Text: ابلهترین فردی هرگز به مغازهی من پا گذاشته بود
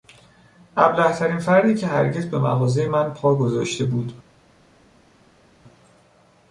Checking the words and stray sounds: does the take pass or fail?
fail